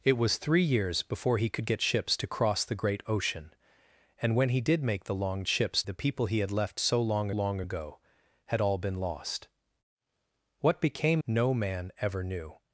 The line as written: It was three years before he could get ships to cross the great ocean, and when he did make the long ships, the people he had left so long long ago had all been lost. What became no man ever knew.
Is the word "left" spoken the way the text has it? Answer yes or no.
yes